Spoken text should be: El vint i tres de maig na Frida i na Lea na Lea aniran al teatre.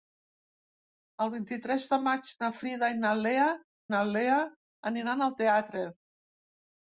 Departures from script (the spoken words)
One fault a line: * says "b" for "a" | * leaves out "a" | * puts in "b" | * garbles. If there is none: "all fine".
all fine